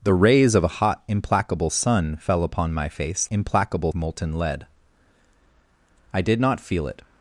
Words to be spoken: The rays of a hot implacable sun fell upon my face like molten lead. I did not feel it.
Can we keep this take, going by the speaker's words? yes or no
no